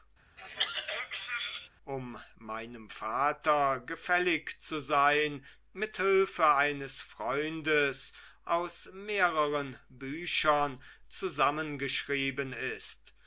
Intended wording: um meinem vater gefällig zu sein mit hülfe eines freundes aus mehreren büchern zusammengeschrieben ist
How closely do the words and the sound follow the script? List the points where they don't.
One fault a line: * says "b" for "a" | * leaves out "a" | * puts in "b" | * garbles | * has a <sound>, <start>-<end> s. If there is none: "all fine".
* has a throat clearing, 0.4-1.7 s